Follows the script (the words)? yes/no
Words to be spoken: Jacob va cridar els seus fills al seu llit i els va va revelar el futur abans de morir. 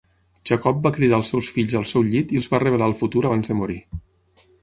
no